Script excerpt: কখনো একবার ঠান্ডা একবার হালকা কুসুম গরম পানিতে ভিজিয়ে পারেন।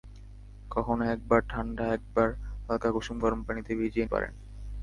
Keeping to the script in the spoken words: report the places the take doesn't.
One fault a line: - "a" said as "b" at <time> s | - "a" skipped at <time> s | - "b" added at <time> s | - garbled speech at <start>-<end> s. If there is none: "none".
none